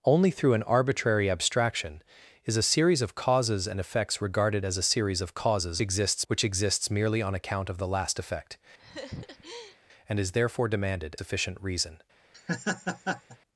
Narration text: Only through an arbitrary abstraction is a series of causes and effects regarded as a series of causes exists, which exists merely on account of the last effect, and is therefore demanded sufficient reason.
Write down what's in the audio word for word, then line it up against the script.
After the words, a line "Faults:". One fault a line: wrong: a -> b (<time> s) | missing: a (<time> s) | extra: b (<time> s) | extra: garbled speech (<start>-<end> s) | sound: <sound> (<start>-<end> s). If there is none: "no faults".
Only through an arbitrary abstraction is a series of causes and effects regarded as a series of causes exists, which exists merely on account of the last effect, and is therefore demanded sufficient reason.
Faults:
sound: laugh (8.8-9.8 s)
sound: laugh (12.3-13.4 s)